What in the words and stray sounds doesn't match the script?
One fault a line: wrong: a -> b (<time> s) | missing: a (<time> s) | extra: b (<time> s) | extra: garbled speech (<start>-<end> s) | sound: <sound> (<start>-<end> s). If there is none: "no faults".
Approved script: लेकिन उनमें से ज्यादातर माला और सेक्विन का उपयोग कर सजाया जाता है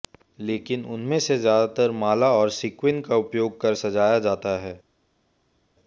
no faults